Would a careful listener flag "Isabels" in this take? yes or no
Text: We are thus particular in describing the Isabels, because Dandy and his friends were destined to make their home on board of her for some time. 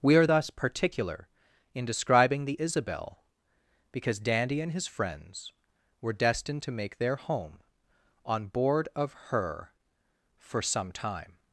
yes